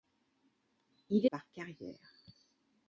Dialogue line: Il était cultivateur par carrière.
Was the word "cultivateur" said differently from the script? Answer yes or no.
yes